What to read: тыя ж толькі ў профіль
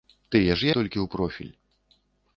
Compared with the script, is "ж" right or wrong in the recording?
right